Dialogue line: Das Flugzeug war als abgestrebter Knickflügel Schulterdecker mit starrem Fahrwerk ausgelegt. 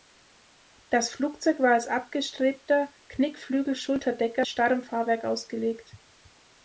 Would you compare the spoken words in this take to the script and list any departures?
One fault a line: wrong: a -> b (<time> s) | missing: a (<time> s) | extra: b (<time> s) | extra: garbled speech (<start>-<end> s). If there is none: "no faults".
missing: mit (4.5 s)